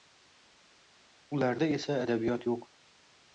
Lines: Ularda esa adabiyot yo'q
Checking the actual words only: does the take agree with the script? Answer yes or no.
yes